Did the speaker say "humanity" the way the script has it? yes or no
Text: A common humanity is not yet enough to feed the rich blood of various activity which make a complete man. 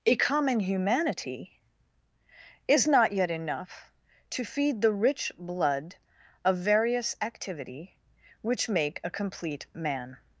yes